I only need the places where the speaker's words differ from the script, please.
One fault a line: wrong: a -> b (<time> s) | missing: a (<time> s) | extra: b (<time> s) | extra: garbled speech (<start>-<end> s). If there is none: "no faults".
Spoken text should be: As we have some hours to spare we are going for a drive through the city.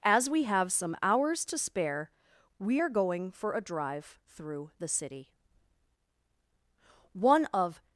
extra: One of (7.1 s)